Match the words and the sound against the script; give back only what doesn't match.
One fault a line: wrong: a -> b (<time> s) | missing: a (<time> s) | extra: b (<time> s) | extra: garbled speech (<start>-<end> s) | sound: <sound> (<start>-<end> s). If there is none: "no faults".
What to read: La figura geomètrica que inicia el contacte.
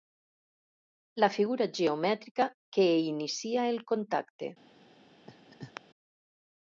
sound: laugh (5.3-5.8 s)